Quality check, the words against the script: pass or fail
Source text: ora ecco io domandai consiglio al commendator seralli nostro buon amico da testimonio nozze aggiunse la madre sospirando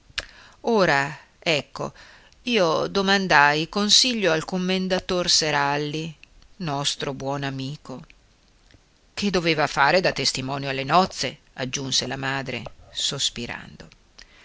fail